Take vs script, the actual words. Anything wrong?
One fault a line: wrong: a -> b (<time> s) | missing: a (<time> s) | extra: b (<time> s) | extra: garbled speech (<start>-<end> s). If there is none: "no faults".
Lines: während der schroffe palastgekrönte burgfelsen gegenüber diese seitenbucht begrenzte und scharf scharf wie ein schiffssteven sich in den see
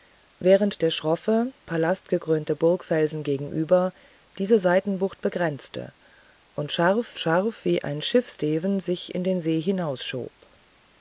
no faults